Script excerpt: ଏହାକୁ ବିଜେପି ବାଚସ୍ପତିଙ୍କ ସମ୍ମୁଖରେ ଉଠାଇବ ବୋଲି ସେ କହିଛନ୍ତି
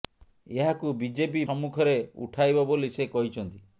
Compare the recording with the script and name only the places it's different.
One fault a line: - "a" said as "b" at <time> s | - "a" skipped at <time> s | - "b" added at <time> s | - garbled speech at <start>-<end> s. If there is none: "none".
- "ବାଚସ୍ପତିଙ୍କ" skipped at 1.4 s